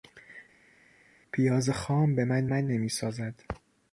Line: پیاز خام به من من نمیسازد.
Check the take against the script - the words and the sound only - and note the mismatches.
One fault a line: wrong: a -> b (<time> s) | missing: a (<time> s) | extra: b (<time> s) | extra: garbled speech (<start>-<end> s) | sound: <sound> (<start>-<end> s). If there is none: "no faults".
no faults